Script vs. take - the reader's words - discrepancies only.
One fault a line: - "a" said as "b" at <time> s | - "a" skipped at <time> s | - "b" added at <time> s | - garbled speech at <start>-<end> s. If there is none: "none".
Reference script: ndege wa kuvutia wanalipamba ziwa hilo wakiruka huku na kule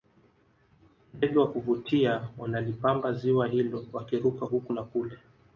none